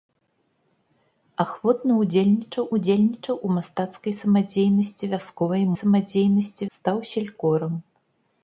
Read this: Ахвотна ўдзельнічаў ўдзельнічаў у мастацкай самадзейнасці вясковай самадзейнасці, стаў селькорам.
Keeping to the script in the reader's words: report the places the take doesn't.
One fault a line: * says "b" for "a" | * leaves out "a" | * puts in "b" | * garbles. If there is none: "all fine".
all fine